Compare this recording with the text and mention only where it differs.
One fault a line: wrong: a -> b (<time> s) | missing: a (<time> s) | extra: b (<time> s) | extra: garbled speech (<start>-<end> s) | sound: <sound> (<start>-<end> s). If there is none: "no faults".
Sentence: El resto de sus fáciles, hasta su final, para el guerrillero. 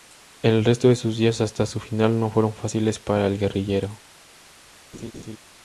wrong: fáciles -> días (1.2 s)
extra: no fueron fáciles (2.2 s)
sound: laugh (4.9-5.4 s)